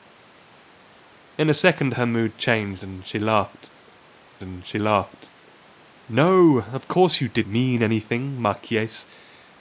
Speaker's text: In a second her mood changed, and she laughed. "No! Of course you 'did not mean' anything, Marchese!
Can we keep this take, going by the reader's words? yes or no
no